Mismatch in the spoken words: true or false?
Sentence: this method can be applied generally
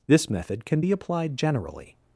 false